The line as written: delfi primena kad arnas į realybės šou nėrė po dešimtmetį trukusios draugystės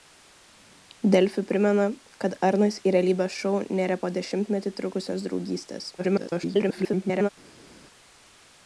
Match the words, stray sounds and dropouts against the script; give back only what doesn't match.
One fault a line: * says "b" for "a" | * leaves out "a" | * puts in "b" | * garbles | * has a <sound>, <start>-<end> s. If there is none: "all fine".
* garbles